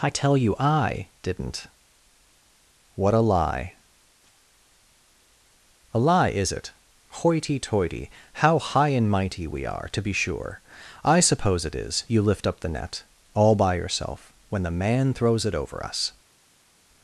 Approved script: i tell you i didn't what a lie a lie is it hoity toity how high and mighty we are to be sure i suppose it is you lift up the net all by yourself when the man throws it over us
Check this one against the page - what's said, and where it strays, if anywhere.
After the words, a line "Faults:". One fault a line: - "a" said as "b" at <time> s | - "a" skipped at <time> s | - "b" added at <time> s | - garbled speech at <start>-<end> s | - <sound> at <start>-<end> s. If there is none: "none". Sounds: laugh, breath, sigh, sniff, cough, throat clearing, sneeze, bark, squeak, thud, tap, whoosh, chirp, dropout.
i tell you i didn't what a lie a lie is it hoity toity how high and mighty we are to be sure i suppose it is you lift up the net all by yourself when the man throws it over us
Faults:
none